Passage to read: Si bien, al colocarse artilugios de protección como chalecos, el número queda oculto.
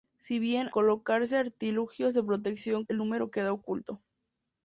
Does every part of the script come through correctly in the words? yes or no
no